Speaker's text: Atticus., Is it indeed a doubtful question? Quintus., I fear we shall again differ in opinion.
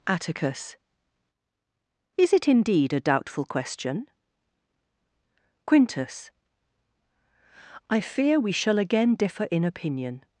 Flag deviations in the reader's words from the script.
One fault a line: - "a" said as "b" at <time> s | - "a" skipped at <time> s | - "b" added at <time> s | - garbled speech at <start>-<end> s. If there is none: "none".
none